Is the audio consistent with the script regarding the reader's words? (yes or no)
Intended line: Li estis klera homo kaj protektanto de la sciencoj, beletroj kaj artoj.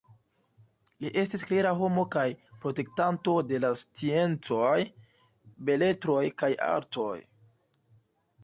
yes